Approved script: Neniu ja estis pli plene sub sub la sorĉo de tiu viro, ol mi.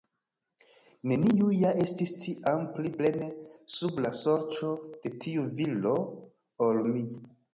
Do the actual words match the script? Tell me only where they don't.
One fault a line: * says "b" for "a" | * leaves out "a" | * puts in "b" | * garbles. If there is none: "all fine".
* puts in "tiam"
* leaves out "sub"